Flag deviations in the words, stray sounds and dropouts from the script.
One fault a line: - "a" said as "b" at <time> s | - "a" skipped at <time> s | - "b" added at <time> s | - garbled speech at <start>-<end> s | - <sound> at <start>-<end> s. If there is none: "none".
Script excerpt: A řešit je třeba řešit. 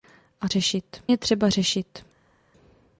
none